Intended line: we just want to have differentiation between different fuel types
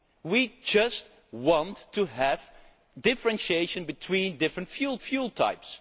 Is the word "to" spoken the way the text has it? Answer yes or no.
yes